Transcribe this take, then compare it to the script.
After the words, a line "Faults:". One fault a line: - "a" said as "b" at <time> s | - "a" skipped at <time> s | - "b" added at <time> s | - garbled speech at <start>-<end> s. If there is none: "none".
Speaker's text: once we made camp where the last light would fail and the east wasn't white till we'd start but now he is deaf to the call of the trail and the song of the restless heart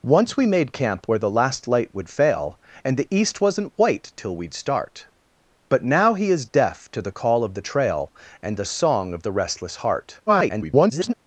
once we made camp where the last light would fail and the east wasn't white till we'd start but now he is deaf to the call of the trail and the song of the restless heart [garbled]
Faults:
- garbled speech at 10.3-11.1 s